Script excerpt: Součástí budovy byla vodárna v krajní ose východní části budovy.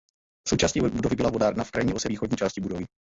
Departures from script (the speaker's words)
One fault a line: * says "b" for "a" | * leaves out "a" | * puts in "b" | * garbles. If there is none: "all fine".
all fine